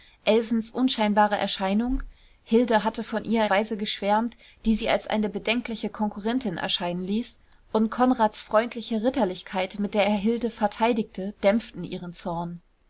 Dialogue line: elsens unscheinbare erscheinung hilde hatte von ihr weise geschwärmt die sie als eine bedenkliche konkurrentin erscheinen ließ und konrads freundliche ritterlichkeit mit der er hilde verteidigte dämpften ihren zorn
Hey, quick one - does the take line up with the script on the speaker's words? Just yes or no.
yes